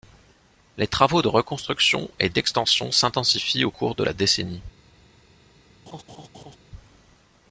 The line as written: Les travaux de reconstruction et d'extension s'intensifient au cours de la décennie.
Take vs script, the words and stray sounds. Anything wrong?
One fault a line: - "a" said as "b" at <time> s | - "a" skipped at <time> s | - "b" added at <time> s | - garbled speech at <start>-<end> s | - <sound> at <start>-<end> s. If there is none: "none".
- laugh at 5.9-6.6 s